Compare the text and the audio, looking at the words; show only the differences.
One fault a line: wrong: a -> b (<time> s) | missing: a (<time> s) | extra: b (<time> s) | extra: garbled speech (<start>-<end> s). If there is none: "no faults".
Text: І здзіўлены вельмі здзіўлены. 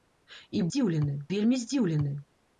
no faults